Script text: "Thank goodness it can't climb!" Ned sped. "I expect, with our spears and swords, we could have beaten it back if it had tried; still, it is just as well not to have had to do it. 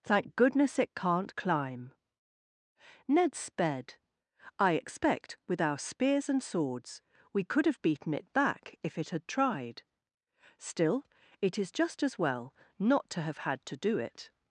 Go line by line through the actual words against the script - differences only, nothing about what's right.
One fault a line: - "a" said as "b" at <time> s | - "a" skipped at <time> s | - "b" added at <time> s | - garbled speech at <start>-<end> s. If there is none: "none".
none